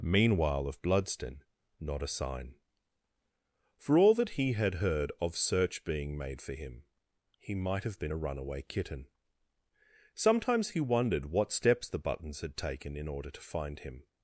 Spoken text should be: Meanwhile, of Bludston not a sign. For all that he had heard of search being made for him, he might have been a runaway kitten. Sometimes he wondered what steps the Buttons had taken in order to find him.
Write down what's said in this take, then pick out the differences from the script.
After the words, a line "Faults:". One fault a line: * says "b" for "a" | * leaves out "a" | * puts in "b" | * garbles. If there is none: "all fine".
Meanwhile, of Bludston not a sign. For all that he had heard of search being made for him, he might have been a runaway kitten. Sometimes he wondered what steps the Buttons had taken in order to find him.
Faults:
all fine